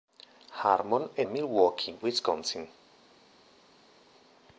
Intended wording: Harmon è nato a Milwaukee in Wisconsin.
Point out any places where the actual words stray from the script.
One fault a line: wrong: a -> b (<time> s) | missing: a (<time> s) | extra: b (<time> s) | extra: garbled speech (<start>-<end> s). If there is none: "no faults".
missing: nato (1.2 s)
missing: in (1.9 s)